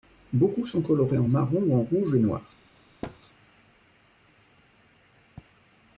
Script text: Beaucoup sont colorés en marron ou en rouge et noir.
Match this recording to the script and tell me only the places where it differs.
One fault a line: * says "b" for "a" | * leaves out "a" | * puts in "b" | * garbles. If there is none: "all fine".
all fine